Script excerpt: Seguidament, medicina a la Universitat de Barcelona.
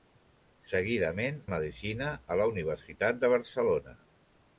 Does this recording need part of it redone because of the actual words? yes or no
no